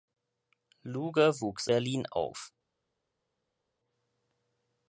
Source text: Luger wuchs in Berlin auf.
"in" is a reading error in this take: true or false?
true